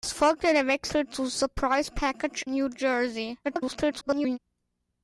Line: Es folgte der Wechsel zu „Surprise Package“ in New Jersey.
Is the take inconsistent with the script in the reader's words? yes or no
yes